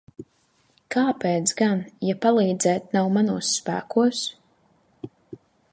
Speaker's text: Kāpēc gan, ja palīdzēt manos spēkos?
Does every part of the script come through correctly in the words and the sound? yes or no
no